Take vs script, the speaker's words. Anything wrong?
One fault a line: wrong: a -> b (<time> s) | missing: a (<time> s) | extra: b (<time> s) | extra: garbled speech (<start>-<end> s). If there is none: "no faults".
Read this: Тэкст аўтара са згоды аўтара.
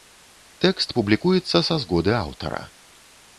wrong: аўтара -> публікуецца (1.0 s)